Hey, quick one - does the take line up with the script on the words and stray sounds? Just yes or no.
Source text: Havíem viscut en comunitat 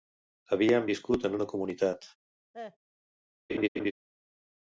no